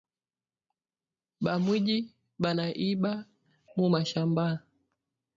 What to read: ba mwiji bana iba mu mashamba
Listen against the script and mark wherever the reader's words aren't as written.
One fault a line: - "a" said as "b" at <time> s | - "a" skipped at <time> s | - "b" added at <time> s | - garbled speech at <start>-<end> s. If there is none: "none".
none